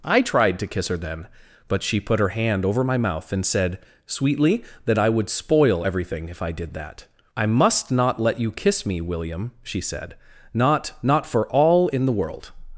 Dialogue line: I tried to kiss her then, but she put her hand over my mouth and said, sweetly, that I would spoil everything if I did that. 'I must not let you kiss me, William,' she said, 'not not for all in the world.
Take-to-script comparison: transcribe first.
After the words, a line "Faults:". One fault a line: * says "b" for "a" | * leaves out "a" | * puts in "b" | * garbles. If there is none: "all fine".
I tried to kiss her then, but she put her hand over my mouth and said, sweetly, that I would spoil everything if I did that. 'I must not let you kiss me, William,' she said, 'not not for all in the world.
Faults:
all fine